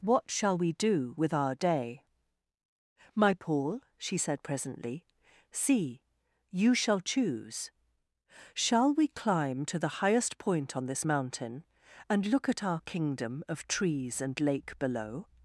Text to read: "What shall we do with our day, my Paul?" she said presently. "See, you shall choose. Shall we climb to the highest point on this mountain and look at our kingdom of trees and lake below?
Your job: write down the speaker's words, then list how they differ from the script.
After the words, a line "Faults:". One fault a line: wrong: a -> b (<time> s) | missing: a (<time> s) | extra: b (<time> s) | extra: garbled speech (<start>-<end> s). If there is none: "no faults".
"What shall we do with our day, my Paul?" she said presently. "See, you shall choose. Shall we climb to the highest point on this mountain and look at our kingdom of trees and lake below?
Faults:
no faults